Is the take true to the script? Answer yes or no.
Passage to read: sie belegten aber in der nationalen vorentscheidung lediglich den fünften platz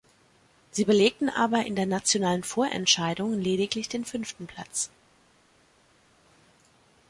yes